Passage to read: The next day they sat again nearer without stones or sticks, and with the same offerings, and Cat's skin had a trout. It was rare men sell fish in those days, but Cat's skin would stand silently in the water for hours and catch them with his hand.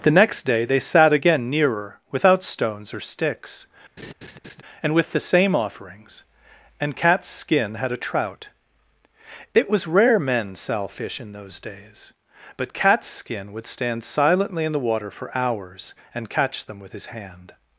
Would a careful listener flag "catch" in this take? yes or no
no